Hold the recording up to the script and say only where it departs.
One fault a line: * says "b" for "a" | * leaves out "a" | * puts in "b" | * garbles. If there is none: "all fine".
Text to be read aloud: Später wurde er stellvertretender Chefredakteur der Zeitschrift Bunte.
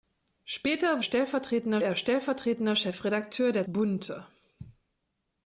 * says "stellvertretender" for "wurde"
* leaves out "Zeitschrift"